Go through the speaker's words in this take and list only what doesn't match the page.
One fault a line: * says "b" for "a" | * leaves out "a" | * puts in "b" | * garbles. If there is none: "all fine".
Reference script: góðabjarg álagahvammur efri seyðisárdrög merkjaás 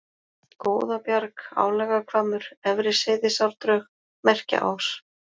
all fine